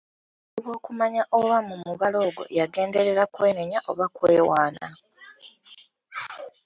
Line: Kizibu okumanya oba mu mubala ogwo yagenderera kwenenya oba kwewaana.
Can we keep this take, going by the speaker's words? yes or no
yes